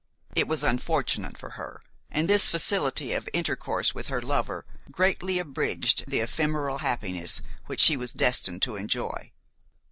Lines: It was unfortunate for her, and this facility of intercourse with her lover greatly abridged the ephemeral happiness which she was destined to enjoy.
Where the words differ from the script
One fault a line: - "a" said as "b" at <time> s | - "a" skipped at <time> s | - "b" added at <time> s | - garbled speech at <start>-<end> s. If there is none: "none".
none